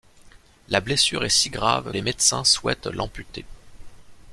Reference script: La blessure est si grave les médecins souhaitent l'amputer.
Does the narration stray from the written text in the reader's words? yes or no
no